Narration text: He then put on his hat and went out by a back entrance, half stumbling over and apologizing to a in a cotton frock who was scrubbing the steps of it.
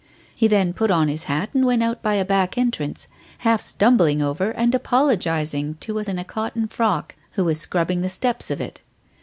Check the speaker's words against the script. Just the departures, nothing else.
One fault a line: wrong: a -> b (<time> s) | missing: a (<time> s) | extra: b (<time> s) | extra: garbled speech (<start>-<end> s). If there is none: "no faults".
no faults